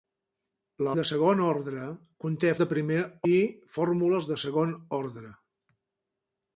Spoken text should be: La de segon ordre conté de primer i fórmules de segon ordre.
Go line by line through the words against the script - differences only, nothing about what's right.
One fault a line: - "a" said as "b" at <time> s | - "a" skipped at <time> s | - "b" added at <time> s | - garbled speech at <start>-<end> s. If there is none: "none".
none